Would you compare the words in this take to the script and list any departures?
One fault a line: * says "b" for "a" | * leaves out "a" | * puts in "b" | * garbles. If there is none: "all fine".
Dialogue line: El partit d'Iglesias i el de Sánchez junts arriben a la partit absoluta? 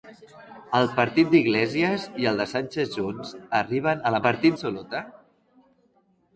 all fine